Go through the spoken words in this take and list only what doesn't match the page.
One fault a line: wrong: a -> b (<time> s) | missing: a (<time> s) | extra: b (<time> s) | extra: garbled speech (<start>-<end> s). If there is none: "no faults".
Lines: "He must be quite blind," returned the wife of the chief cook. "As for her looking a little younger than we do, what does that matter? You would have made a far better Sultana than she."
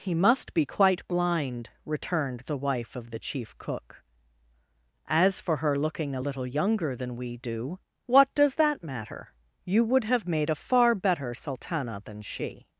no faults